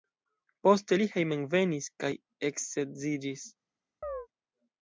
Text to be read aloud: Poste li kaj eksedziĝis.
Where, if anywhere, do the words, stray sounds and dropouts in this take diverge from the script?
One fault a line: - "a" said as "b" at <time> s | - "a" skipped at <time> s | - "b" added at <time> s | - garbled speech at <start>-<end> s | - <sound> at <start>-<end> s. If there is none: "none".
- "hejmenvenis" added at 1.1 s
- chirp at 4.0-4.3 s